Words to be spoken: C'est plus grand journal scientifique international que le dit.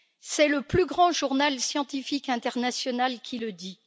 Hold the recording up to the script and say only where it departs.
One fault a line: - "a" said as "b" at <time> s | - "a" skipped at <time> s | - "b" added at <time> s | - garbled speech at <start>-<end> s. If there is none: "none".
- "le" added at 0.5 s
- "que" said as "qui" at 3.2 s